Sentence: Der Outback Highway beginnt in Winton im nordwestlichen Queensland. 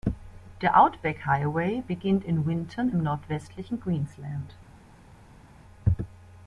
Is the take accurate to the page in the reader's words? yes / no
yes